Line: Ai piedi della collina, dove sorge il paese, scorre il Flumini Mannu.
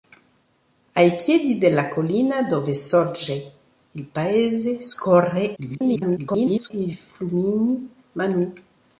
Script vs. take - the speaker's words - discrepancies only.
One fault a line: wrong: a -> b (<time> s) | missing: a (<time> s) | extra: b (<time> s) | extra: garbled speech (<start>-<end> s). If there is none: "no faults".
extra: garbled speech (5.6-6.7 s)